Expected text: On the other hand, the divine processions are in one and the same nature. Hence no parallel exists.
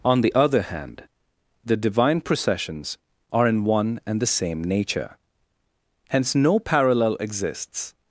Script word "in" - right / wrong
right